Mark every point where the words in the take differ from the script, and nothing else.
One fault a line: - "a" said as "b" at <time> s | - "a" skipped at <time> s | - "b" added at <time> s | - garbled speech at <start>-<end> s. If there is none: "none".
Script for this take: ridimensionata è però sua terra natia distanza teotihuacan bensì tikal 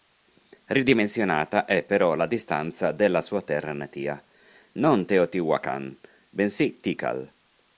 - "la distanza della" added at 2.1 s
- "distanza" said as "non" at 4.7 s